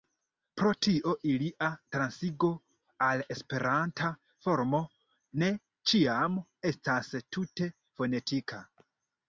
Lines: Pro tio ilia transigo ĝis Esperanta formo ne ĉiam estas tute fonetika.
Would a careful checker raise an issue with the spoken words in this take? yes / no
yes